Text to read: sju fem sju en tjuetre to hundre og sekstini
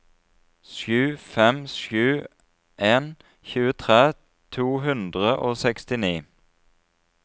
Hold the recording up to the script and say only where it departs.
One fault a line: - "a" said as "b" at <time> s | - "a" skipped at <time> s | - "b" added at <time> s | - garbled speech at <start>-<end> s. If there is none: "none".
none